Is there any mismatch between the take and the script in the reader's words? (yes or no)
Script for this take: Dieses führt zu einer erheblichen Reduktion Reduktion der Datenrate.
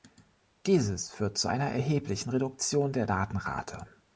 yes